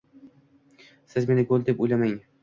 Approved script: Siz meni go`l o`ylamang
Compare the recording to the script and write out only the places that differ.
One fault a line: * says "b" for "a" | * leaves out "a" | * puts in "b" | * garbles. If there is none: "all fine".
* puts in "deb"